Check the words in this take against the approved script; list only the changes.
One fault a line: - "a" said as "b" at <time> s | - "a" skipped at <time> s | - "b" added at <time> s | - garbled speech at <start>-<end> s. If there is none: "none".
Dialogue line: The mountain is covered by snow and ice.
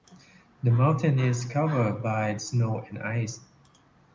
none